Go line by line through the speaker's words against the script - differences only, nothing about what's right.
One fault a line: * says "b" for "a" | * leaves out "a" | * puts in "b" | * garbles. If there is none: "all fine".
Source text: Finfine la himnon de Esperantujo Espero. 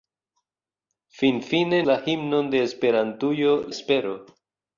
all fine